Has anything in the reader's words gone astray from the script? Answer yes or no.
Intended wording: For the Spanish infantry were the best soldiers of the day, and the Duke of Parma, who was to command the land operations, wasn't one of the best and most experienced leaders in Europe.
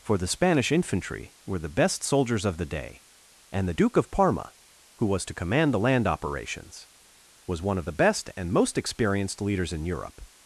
yes